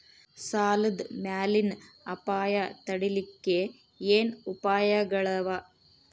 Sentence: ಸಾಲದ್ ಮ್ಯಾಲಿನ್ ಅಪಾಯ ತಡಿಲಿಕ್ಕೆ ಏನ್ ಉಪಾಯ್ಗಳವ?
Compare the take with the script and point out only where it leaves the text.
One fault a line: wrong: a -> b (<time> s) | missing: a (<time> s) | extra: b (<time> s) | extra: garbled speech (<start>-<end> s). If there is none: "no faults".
no faults